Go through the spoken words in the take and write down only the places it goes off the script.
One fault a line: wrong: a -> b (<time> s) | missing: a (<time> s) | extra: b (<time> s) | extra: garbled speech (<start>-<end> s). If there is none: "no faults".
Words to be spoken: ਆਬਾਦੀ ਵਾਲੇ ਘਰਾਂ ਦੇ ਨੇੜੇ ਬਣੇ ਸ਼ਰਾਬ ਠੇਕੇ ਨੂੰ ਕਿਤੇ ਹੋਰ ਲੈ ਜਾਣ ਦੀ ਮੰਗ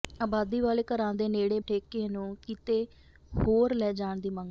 missing: ਬਣੇ ਸ਼ਰਾਬ (1.6 s)